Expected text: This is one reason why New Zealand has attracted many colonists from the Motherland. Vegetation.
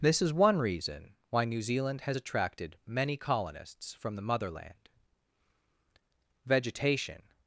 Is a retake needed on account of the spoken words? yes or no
no